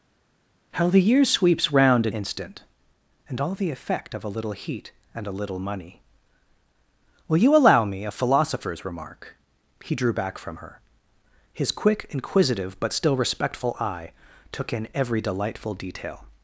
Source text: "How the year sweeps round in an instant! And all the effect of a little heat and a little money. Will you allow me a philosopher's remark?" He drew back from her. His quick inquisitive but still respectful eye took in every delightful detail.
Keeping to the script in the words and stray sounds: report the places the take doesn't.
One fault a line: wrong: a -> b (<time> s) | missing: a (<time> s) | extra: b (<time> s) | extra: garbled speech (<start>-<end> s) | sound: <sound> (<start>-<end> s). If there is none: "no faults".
missing: an (2.1 s)